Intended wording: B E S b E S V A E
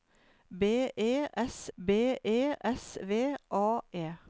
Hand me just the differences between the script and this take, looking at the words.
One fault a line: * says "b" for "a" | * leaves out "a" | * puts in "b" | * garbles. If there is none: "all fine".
all fine